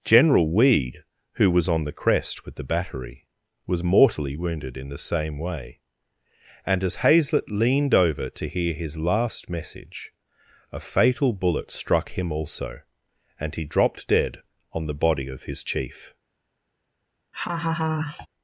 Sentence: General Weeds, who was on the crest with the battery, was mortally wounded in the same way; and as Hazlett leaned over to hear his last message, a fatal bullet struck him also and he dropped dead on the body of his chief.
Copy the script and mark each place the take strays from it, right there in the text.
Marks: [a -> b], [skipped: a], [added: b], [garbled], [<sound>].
General [Weeds, -> Weed] who was on the crest with the battery, was mortally wounded in the same way; and as Hazlett leaned over to hear his last message, a fatal bullet struck him also and he dropped dead on the body of his chief. [laugh]